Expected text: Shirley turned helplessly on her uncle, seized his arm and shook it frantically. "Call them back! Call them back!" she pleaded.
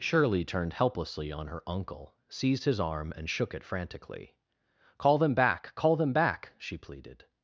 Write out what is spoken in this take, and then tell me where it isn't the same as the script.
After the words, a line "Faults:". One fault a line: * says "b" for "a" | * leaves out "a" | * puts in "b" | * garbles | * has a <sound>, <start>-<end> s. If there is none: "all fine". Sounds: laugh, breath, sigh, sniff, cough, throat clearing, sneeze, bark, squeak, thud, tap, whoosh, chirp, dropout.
Shirley turned helplessly on her uncle, seized his arm and shook it frantically. "Call them back! Call them back!" she pleaded.
Faults:
all fine